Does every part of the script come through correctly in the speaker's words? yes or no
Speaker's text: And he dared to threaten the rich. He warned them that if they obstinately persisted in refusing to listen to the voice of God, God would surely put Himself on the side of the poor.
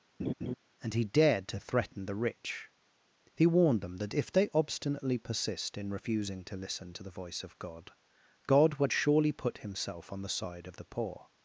no